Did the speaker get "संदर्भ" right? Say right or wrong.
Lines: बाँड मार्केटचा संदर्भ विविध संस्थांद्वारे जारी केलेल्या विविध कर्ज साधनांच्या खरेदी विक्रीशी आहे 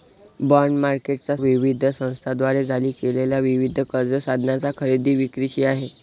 wrong